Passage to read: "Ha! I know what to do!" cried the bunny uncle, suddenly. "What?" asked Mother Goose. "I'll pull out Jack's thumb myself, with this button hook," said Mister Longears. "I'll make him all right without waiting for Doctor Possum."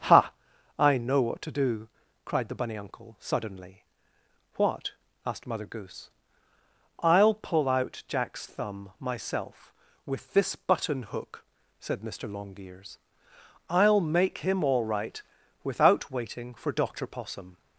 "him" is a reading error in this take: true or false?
false